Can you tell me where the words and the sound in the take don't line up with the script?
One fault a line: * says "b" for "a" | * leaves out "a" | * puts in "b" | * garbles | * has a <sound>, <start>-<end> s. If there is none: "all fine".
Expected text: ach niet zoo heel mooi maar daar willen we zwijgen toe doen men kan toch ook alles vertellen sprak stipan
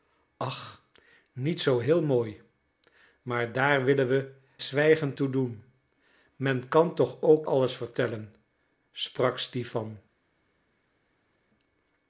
all fine